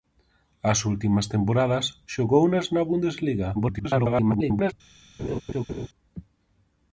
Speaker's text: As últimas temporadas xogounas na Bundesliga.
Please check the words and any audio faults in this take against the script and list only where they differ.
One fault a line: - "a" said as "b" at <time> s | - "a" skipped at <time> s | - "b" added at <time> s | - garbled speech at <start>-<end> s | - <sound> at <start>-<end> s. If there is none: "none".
- garbled speech at 3.5-4.7 s
- laugh at 5.2-5.9 s